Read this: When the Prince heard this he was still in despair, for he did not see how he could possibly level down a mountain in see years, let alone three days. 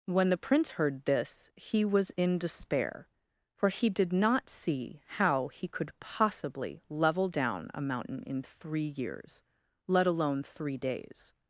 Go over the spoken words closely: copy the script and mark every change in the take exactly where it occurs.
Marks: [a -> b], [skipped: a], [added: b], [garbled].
When the Prince heard this he was [skipped: still] in despair, for he did not see how he could possibly level down a mountain in [see -> three] years, let alone three days.